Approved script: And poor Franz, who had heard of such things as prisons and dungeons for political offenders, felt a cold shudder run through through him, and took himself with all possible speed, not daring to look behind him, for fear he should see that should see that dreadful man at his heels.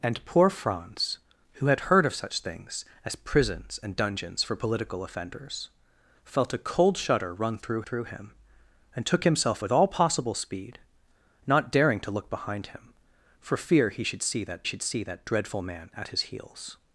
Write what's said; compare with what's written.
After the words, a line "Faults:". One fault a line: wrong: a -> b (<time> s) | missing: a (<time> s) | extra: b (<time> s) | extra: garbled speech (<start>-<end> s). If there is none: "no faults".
And poor Franz, who had heard of such things as prisons and dungeons for political offenders, felt a cold shudder run through through him, and took himself with all possible speed, not daring to look behind him, for fear he should see that should see that dreadful man at his heels.
Faults:
no faults